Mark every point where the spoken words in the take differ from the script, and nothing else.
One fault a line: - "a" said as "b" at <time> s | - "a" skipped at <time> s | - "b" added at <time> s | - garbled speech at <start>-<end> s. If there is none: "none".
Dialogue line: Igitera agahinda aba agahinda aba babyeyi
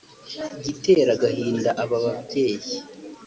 - "agahinda aba" skipped at 2.0 s